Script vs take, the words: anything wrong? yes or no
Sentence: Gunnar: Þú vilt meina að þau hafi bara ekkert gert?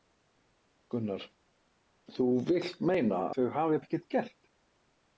yes